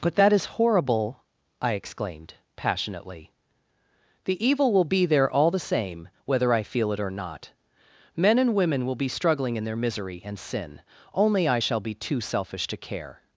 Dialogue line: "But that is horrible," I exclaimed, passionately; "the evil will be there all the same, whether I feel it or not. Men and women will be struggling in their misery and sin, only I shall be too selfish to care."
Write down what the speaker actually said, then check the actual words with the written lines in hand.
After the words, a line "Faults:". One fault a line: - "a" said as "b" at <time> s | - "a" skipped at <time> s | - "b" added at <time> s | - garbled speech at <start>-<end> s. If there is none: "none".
"But that is horrible," I exclaimed, passionately; "the evil will be there all the same, whether I feel it or not. Men and women will be struggling in their misery and sin, only I shall be too selfish to care."
Faults:
none